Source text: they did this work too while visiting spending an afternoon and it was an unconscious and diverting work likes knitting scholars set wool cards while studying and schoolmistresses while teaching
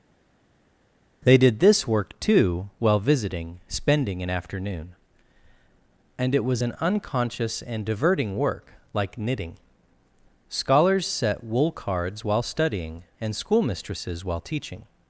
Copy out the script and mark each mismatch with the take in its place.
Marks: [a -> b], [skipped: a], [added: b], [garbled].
they did this work too while visiting spending an afternoon and it was an unconscious and diverting work [likes -> like] knitting scholars set wool cards while studying and schoolmistresses while teaching